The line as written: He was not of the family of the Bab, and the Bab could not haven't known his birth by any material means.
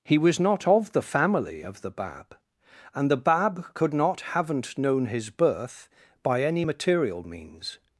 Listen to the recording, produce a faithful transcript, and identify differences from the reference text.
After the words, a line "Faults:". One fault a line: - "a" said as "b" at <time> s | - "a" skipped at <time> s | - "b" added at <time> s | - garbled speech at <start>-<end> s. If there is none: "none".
He was not of the family of the Bab, and the Bab could not haven't known his birth by any material means.
Faults:
none